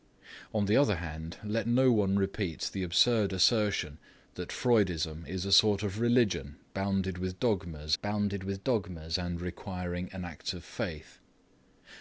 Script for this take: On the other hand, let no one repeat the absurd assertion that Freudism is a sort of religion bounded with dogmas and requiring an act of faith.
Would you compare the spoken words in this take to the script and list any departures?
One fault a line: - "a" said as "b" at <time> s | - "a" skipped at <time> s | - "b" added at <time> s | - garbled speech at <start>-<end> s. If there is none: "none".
- "bounded with dogmas" added at 8.0 s